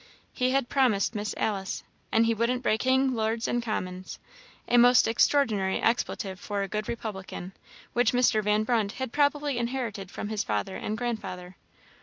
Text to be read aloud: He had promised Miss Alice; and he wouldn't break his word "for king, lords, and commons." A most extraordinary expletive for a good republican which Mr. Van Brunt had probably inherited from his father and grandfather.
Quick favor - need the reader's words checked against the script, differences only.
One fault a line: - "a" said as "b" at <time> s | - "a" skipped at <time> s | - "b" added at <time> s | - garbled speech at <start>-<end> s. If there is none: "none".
- "his word for" skipped at 2.8 s